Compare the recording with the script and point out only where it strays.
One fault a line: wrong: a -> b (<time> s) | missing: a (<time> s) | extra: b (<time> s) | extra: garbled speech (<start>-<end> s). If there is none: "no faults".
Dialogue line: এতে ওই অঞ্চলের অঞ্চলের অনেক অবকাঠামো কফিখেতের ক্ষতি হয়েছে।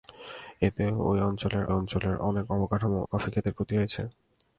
no faults